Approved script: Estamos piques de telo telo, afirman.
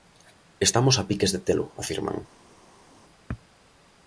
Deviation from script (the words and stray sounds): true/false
true